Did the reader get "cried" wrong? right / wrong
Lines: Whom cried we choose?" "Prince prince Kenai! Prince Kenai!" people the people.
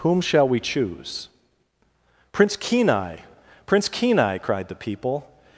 wrong